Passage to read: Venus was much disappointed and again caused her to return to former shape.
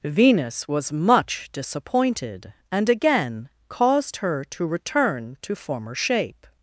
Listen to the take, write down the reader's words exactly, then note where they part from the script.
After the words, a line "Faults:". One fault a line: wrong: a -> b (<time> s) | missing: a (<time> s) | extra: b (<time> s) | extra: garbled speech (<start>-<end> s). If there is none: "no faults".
Venus was much disappointed and again caused her to return to former shape.
Faults:
no faults